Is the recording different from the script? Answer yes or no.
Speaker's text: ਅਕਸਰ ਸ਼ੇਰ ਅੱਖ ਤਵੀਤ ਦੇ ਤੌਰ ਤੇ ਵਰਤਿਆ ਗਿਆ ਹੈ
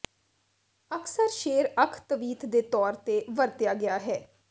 no